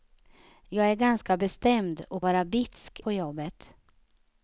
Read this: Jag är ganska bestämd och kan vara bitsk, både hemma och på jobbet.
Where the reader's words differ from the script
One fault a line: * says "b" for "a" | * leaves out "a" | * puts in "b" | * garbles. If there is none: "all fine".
* leaves out "kan"
* leaves out "både hemma och"